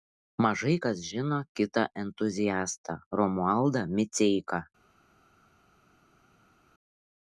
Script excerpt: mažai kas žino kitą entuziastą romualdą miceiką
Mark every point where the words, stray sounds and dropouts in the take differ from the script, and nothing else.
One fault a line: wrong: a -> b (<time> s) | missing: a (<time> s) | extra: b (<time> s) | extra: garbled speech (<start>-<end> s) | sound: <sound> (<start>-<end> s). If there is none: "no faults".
no faults